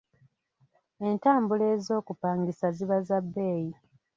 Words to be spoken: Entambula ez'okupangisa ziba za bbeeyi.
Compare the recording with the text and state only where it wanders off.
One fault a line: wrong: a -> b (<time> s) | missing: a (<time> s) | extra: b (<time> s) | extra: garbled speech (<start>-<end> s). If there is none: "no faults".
no faults